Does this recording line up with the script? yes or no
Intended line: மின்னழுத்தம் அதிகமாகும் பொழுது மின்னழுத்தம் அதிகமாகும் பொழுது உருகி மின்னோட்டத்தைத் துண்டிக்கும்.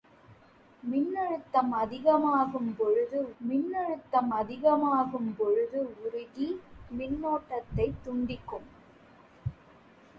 yes